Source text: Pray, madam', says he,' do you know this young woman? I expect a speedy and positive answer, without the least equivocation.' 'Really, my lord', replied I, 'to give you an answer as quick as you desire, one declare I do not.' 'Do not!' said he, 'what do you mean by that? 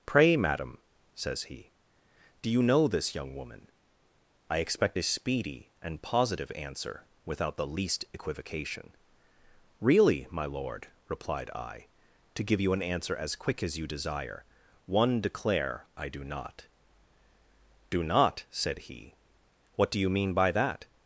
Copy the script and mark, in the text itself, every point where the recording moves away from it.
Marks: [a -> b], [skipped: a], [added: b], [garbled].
Pray, madam', says he,' do you know this young woman? I expect a speedy and positive answer, without the least equivocation.' 'Really, my lord', replied I, 'to give you an answer as quick as you desire, one declare I do not.' 'Do not!' said he, 'what do you mean by that?